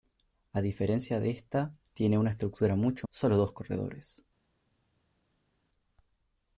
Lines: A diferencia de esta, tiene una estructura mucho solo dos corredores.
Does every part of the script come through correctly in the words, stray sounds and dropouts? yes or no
yes